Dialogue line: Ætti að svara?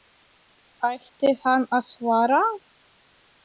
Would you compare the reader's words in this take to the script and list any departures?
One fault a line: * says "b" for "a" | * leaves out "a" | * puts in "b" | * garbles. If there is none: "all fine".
* puts in "hann"